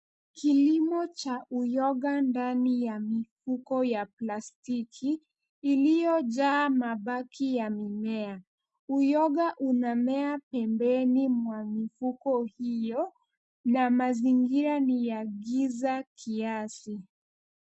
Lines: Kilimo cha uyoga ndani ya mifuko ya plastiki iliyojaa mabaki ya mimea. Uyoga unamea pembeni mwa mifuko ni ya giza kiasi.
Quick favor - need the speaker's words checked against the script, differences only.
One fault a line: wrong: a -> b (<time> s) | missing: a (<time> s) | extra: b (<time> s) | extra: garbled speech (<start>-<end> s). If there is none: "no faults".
extra: hiyo na mazingira (12.4 s)